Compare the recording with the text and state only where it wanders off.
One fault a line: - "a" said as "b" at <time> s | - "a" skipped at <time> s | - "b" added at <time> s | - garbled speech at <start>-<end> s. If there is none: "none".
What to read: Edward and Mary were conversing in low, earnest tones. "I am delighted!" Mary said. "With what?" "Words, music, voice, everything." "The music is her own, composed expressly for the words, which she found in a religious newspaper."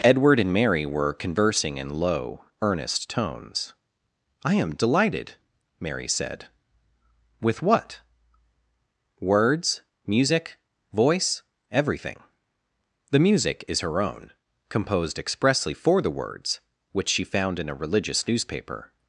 none